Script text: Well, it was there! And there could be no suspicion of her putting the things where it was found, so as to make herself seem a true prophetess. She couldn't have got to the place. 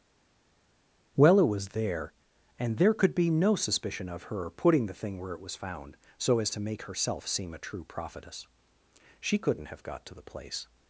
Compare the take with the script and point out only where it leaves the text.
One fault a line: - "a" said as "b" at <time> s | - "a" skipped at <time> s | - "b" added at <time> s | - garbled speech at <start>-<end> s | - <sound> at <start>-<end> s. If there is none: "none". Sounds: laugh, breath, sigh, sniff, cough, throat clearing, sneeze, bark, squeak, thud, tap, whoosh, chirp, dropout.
- "things" said as "thing" at 4.9 s